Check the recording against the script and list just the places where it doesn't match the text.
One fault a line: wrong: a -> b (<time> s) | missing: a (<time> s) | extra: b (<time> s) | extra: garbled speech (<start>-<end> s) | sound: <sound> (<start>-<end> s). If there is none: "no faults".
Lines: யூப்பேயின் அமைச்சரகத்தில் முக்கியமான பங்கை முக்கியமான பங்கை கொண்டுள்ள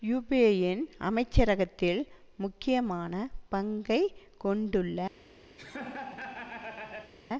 missing: முக்கியமான பங்கை (4.0 s)
sound: laugh (5.6-7.1 s)